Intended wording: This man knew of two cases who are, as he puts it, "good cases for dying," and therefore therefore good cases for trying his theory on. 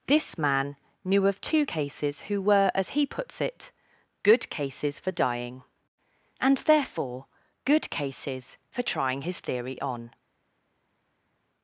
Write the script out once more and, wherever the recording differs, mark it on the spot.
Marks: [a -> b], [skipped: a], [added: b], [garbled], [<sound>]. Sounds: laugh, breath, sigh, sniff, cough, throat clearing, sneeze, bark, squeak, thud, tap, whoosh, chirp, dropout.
This man knew of two cases who [are, -> were] as he puts it, "good cases for dying," and therefore [skipped: therefore] good cases for trying his theory on.